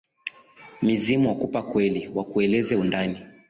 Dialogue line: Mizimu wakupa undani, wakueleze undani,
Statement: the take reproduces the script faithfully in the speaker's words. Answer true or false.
false